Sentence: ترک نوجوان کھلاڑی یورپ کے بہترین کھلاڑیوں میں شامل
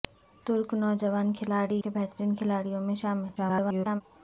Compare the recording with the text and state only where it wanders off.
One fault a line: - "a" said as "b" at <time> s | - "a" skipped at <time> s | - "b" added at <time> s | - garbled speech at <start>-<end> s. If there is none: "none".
- "یورپ" skipped at 1.8 s
- garbled speech at 3.4-4.0 s